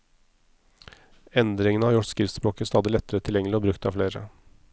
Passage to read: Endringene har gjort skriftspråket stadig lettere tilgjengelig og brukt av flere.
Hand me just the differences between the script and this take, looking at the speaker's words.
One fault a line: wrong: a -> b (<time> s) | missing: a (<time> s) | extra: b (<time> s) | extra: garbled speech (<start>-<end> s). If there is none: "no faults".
no faults